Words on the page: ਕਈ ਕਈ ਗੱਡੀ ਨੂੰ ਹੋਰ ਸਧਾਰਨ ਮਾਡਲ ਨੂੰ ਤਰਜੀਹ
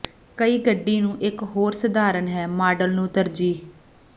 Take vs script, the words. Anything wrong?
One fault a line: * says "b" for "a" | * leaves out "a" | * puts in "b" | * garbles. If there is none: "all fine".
* leaves out "ਕਈ"
* puts in "ਇੱਕ"
* puts in "ਹੈ"